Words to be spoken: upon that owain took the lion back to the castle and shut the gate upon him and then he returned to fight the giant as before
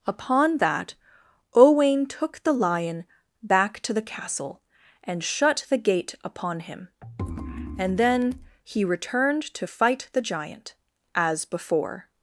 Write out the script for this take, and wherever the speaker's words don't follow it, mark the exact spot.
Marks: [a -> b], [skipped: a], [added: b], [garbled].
upon that owain took the lion back to the castle and shut the gate upon him and then he returned to fight the giant as before